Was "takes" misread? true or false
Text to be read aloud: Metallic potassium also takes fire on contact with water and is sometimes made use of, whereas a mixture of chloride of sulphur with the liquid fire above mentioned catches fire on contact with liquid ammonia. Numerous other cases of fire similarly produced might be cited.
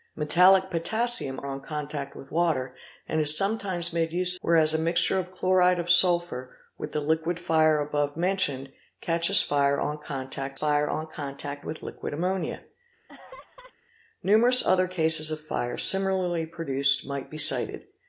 true